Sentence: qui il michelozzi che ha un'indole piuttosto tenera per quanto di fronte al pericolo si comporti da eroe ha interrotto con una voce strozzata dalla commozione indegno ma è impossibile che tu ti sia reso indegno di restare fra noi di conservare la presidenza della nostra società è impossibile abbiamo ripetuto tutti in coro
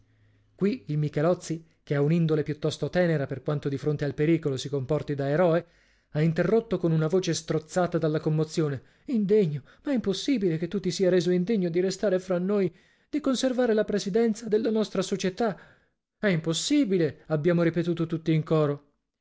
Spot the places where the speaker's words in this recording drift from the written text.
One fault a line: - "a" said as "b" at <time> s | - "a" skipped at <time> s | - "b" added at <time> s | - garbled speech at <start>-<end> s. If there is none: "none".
none